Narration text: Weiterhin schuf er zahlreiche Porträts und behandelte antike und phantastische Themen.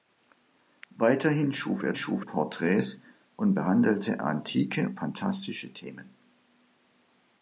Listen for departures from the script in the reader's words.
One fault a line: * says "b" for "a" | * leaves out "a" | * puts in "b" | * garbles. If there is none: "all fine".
* says "schuf" for "zahlreiche"
* leaves out "und"